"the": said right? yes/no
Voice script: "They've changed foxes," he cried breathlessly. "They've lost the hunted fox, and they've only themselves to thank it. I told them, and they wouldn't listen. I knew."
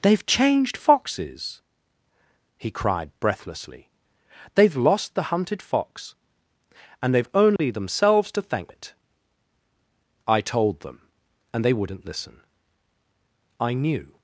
yes